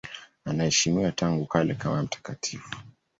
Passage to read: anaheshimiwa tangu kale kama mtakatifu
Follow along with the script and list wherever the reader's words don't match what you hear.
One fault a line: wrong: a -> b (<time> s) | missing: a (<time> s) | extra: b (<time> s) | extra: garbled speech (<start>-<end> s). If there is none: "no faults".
no faults